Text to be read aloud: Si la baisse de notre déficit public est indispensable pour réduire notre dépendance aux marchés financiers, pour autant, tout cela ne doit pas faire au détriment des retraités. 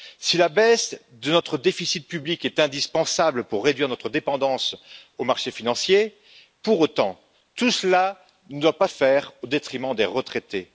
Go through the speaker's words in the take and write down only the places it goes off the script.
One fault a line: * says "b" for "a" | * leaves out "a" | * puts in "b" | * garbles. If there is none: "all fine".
all fine